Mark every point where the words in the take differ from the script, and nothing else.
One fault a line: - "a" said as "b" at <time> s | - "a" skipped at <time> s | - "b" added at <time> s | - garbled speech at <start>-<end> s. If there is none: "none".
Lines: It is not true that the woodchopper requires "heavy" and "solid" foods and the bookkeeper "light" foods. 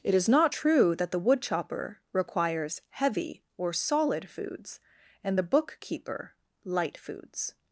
- "and" said as "or" at 3.6 s